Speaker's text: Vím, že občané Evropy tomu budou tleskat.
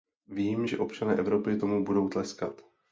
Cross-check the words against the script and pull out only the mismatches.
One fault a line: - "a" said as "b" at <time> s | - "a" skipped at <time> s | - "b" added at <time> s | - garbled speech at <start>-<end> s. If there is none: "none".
none